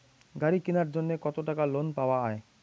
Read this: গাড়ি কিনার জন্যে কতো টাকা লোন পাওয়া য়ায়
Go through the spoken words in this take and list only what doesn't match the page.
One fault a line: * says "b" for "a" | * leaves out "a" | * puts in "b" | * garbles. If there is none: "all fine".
all fine